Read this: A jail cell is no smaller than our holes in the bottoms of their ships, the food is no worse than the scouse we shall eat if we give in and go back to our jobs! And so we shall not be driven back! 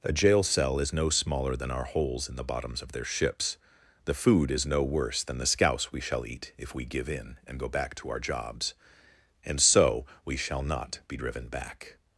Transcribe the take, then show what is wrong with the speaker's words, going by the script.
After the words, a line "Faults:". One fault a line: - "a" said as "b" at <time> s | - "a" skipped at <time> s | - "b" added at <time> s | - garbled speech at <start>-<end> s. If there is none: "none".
A jail cell is no smaller than our holes in the bottoms of their ships, the food is no worse than the scouse we shall eat if we give in and go back to our jobs! And so we shall not be driven back!
Faults:
none